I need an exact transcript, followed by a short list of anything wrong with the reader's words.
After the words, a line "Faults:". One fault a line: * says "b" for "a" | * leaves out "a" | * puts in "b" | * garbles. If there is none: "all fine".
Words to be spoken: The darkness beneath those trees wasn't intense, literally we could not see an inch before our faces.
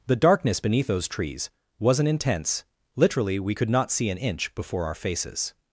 The darkness beneath those trees wasn't intense, literally we could not see an inch before our faces.
Faults:
all fine